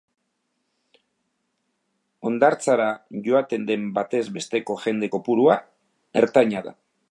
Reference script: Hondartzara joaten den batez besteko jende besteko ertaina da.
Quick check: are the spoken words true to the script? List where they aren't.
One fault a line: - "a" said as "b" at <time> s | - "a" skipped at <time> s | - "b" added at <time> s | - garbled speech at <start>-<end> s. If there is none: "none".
- "besteko" said as "kopurua" at 5.2 s